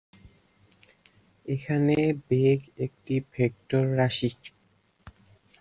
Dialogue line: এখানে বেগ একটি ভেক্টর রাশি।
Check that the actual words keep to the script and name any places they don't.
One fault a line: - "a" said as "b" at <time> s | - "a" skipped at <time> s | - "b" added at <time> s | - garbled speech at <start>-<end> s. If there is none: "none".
none